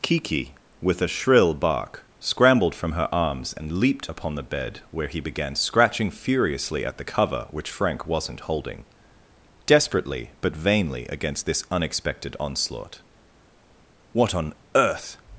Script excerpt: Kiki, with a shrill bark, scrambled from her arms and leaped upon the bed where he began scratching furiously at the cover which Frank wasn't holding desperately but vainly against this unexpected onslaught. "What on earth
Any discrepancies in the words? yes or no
no